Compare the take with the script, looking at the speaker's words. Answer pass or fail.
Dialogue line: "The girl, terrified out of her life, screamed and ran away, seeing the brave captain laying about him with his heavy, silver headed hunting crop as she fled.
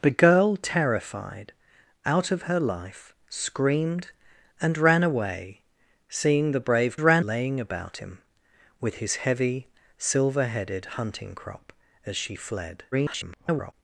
fail